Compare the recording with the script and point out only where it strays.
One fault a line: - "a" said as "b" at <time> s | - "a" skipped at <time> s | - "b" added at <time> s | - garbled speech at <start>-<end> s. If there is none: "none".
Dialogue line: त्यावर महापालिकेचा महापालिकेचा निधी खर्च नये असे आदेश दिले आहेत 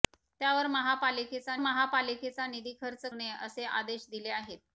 none